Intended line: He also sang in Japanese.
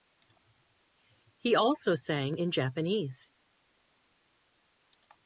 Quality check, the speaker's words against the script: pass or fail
pass